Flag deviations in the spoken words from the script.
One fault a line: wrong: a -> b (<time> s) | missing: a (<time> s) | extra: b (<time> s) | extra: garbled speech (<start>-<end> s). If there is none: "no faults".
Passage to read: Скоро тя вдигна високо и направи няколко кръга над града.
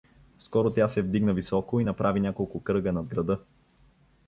extra: се (0.9 s)